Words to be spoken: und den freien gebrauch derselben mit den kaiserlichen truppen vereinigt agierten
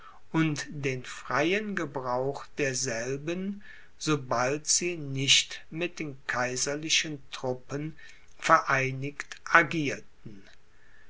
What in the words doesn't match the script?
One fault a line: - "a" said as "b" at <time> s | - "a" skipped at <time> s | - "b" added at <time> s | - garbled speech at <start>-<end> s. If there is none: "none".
- "sobald sie nicht" added at 4.0 s